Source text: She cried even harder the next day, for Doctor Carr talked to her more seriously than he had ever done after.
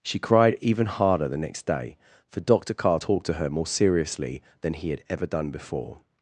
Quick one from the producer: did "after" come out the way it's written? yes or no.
no